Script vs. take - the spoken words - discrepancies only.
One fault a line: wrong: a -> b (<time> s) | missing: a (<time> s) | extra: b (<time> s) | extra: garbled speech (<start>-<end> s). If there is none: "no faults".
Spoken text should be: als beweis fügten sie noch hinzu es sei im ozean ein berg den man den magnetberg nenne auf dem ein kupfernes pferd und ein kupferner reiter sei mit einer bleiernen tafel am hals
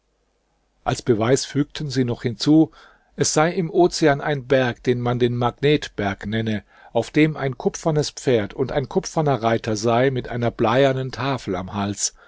no faults